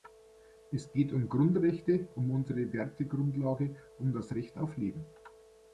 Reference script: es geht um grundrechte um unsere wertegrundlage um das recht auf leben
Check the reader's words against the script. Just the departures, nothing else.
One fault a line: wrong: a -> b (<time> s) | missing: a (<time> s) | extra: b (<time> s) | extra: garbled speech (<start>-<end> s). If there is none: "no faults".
no faults